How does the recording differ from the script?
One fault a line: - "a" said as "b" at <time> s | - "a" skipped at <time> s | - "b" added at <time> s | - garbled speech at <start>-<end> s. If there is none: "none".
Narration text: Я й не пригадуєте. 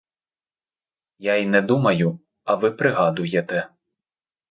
- "думаю а ви" added at 1.6 s